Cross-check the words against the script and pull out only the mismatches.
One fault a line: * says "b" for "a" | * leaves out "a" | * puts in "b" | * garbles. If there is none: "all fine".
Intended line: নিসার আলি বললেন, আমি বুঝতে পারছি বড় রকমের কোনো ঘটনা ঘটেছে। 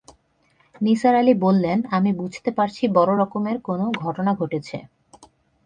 all fine